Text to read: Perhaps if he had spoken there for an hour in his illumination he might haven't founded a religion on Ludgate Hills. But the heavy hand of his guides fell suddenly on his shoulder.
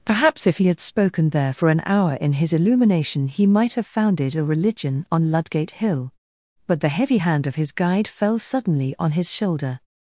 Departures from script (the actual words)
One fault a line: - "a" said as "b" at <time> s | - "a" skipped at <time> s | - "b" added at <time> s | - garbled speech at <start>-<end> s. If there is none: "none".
- "haven't" said as "have" at 3.7 s
- "Hills" said as "Hill" at 5.7 s
- "guides" said as "guide" at 7.7 s